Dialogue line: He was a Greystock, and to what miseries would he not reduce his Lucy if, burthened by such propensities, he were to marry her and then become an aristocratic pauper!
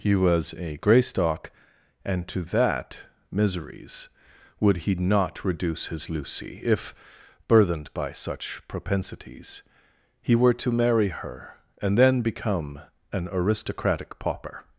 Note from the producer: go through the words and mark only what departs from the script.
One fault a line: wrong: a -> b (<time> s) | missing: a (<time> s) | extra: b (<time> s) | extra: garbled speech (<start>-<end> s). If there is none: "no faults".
wrong: what -> that (2.5 s)